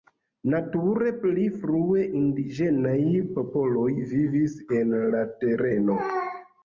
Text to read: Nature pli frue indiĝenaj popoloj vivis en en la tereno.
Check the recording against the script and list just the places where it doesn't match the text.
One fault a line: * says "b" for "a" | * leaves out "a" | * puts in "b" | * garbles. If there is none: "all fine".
* leaves out "en"